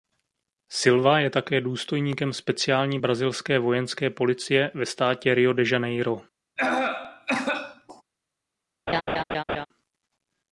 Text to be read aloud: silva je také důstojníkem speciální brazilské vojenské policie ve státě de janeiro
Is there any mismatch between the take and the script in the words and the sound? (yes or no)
yes